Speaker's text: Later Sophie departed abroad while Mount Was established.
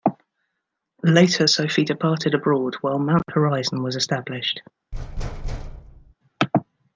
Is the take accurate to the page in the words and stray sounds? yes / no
no